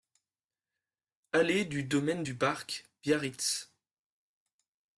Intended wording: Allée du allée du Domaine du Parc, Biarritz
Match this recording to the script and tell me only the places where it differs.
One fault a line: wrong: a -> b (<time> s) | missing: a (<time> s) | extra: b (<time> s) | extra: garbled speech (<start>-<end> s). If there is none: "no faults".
missing: allée du (1.8 s)